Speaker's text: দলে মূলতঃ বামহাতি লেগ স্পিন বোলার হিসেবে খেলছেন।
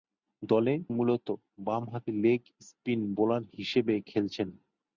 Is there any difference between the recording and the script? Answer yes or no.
no